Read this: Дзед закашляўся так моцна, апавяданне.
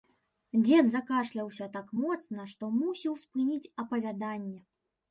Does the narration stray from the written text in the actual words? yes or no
yes